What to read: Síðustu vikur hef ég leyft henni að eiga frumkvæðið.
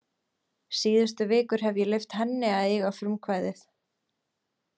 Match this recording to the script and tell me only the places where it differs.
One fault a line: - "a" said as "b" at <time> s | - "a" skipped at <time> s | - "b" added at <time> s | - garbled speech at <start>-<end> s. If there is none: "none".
none